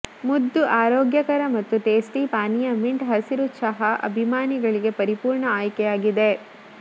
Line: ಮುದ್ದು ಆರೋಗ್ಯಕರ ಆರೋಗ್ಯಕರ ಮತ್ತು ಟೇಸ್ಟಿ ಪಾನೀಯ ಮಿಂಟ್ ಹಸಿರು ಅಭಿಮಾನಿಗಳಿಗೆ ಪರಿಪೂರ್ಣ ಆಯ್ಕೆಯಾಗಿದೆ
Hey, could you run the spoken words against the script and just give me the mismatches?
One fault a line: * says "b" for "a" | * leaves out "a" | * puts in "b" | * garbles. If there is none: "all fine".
* leaves out "ಆರೋಗ್ಯಕರ"
* puts in "ಚಹಾ"